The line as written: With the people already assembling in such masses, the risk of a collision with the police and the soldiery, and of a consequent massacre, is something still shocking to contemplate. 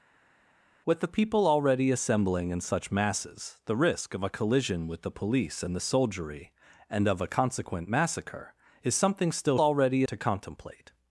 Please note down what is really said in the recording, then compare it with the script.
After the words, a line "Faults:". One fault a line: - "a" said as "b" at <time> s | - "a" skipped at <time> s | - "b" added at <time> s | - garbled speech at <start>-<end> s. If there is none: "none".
With the people already assembling in such masses, the risk of a collision with the police and the soldiery, and of a consequent massacre, is something still already to contemplate.
Faults:
- "shocking" said as "already" at 9.6 s